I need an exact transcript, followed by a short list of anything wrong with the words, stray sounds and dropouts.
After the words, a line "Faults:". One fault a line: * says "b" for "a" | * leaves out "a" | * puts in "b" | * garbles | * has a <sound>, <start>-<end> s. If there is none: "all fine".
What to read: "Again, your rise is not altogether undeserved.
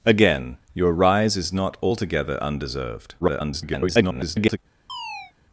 "Again, your rise is not altogether undeserved. [garbled]
Faults:
* garbles
* has a chirp, 4.9-5.3 s